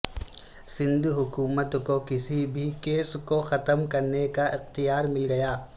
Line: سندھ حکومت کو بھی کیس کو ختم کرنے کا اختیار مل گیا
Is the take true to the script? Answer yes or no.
no